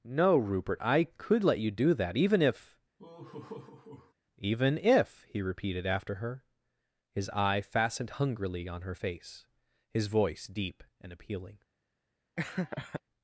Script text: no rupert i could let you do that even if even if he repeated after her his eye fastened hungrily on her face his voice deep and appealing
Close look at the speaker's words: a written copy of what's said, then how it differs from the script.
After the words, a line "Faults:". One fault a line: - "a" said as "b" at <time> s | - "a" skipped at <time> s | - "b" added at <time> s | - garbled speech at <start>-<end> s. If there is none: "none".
no rupert i could let you do that even if even if he repeated after her his eye fastened hungrily on her face his voice deep and appealing
Faults:
none